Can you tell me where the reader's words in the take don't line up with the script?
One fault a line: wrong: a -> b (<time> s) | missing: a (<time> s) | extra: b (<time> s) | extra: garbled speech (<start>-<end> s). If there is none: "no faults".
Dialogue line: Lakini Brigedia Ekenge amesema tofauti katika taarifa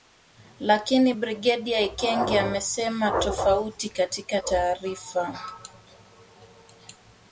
no faults